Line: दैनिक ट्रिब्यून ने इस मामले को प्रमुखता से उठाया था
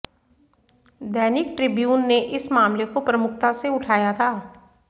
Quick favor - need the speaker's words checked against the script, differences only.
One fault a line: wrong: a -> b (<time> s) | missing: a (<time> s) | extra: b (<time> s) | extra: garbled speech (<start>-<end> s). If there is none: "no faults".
no faults